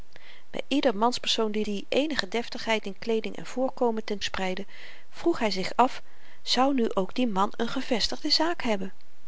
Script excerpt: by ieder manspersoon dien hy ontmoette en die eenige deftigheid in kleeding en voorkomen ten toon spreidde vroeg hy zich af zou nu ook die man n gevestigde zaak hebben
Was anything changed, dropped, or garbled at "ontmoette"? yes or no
yes